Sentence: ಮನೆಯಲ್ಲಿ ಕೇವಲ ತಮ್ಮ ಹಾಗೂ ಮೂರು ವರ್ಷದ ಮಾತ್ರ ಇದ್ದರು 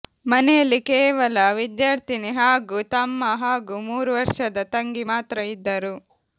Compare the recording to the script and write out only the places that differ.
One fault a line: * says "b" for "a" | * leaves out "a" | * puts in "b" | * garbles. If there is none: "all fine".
* puts in "ವಿದ್ಯಾರ್ಥಿನಿ ಹಾಗೂ"
* puts in "ತಂಗಿ"